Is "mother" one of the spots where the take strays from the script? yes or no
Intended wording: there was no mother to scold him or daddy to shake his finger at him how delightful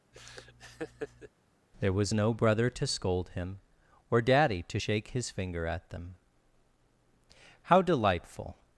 yes